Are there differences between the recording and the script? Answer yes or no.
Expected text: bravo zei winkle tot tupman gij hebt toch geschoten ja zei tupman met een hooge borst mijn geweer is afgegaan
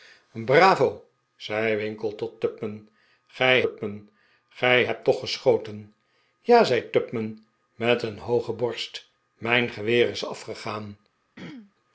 yes